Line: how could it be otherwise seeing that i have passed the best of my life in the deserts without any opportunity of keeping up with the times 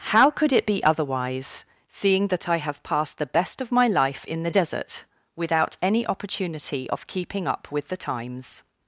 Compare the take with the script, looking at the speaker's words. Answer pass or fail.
fail